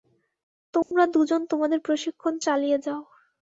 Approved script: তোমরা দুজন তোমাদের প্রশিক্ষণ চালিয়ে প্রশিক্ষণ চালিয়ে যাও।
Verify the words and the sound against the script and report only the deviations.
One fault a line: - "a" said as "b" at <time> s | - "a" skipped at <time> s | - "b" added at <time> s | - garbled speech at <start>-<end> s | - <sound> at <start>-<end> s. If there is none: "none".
- dropout at 0.8-0.9 s
- "প্রশিক্ষণ চালিয়ে" skipped at 2.8 s